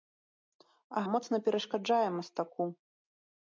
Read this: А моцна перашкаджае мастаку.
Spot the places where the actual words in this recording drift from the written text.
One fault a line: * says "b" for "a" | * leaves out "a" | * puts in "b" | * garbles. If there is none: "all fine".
all fine